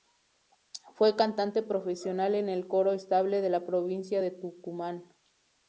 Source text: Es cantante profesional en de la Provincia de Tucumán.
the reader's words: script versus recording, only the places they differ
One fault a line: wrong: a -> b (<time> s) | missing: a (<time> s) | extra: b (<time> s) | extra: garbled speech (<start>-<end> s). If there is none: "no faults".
wrong: Es -> Fue (0.9 s)
extra: el Coro Estable (2.5 s)